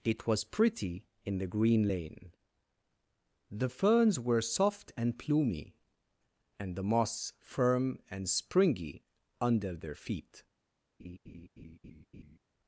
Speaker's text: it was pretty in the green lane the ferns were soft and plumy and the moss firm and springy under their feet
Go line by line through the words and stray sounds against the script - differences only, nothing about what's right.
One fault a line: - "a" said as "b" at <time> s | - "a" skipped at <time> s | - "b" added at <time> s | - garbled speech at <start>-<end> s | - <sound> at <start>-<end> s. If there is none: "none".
- laugh at 11.0-12.4 s